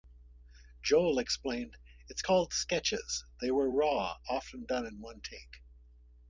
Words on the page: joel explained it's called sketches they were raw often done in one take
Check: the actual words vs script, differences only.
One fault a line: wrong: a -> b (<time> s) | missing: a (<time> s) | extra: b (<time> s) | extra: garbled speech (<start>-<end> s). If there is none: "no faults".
no faults